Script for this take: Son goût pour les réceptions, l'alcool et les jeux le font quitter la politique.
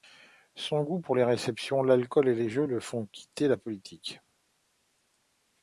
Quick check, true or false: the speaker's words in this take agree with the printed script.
true